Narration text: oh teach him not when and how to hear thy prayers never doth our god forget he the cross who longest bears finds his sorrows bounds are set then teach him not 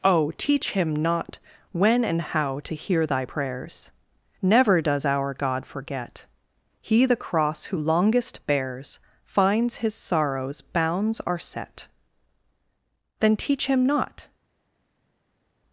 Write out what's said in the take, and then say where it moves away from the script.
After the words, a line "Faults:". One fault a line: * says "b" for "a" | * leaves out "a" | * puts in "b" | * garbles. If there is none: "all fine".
oh teach him not when and how to hear thy prayers never does our god forget he the cross who longest bears finds his sorrows bounds are set then teach him not
Faults:
* says "does" for "doth"